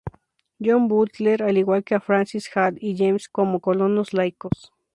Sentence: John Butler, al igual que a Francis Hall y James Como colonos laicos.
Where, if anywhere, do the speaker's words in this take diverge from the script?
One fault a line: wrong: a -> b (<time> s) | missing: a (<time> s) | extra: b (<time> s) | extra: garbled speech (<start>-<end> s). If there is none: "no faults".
no faults